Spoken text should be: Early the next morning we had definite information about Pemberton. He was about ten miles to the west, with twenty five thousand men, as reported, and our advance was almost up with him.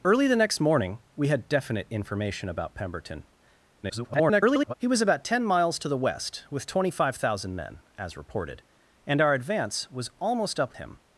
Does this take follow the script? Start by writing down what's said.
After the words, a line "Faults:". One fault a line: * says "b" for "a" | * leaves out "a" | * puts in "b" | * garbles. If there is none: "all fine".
Early the next morning we had definite information about Pemberton. [garbled] He was about ten miles to the west, with twenty five thousand men, as reported, and our advance was almost up him.
Faults:
* garbles
* leaves out "with"